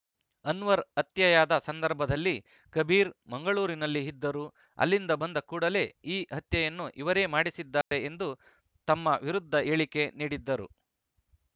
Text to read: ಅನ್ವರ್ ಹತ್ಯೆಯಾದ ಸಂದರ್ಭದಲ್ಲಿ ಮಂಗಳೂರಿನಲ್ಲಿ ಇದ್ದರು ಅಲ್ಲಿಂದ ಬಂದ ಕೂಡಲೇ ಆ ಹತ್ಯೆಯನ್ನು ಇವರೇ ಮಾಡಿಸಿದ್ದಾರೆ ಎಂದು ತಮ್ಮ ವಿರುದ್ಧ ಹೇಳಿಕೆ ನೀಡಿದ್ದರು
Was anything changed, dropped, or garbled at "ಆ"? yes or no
yes